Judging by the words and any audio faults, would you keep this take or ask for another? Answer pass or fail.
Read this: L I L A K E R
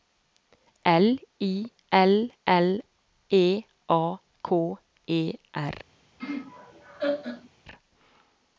fail